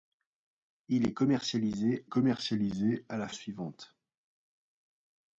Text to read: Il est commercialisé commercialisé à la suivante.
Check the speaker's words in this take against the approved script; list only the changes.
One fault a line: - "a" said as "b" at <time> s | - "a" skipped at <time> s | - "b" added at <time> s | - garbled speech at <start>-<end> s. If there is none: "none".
none